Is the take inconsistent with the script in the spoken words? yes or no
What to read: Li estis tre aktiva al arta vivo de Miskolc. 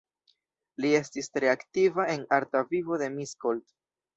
yes